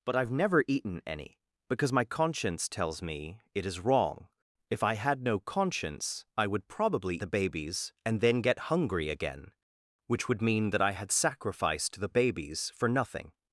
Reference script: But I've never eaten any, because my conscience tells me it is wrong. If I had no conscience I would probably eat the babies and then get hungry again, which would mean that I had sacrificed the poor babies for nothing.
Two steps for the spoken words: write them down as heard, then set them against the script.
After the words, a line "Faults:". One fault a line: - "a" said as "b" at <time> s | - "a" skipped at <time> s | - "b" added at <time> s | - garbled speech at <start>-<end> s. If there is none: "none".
But I've never eaten any, because my conscience tells me it is wrong. If I had no conscience I would probably the babies and then get hungry again, which would mean that I had sacrificed the babies for nothing.
Faults:
- "eat" skipped at 7.2 s
- "poor" skipped at 12.1 s